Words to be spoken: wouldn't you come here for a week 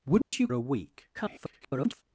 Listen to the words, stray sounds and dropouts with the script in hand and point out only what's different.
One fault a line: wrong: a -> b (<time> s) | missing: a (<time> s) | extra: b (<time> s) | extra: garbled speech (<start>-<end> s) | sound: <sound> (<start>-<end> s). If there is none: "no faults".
sound: dropout (0.2-0.3 s)
missing: come here for (0.5 s)
extra: garbled speech (1.1-2.0 s)